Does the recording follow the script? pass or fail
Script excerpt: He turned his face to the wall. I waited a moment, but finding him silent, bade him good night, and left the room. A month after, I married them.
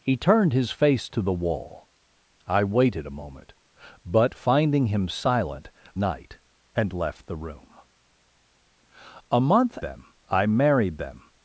fail